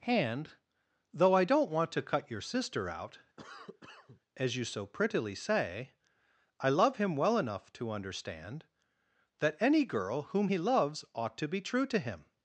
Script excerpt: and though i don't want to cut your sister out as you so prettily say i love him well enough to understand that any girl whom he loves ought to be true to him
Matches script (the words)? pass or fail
pass